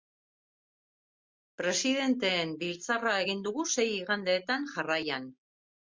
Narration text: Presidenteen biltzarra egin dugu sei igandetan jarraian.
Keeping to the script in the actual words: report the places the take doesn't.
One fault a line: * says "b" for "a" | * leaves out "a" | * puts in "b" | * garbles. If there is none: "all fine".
all fine